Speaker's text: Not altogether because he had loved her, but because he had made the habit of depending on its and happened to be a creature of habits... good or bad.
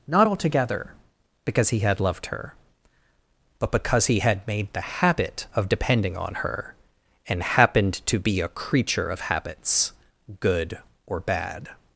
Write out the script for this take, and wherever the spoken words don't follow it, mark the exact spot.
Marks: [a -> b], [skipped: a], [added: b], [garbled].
Not altogether because he had loved her, but because he had made the habit of depending on [its -> her] and happened to be a creature of habits... good or bad.